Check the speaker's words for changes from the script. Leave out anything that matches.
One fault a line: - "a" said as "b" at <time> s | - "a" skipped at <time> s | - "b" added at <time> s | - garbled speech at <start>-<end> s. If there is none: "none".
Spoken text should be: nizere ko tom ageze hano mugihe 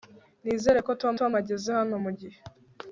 - "tom" added at 1.2 s